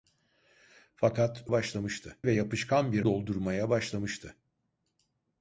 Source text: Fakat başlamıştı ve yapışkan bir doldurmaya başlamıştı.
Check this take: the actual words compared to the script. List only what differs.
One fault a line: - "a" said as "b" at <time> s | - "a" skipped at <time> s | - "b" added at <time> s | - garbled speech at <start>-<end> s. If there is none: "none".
none